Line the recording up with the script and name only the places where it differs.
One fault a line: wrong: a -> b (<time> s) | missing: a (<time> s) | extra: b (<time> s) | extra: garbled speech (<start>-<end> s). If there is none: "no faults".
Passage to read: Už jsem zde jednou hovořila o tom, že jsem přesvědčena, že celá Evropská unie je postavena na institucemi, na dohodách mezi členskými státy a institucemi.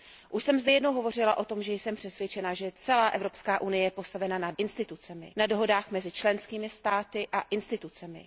no faults